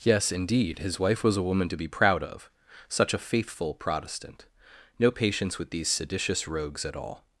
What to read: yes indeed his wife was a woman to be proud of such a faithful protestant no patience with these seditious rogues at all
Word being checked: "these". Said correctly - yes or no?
yes